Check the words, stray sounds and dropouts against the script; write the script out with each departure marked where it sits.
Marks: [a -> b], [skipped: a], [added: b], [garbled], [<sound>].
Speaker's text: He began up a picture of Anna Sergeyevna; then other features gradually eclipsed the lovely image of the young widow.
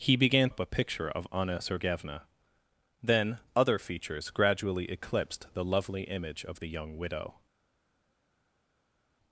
He began up a picture of Anna Sergeyevna; then other features gradually eclipsed the lovely image of the young widow.